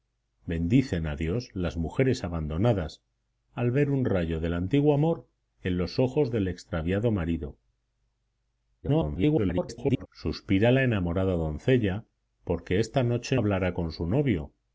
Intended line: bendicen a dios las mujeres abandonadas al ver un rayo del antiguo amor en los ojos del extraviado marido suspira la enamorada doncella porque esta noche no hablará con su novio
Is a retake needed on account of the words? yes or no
yes